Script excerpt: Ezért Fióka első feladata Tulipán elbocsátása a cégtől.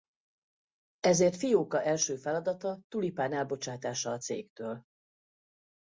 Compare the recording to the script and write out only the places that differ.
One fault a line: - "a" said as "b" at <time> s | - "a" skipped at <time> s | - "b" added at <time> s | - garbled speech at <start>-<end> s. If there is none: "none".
none